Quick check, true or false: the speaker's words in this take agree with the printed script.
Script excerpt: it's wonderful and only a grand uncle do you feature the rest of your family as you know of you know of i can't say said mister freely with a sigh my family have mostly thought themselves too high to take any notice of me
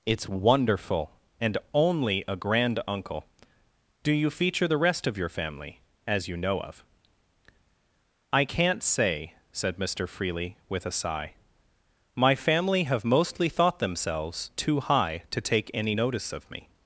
false